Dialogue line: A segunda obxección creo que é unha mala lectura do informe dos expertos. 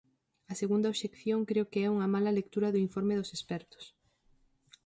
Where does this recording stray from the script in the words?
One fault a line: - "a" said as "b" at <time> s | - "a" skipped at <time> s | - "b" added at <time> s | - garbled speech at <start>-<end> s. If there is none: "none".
none